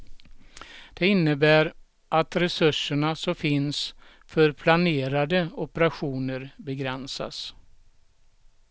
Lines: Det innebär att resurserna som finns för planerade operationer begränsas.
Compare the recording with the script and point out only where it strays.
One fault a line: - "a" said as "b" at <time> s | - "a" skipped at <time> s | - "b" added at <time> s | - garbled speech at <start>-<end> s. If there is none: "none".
none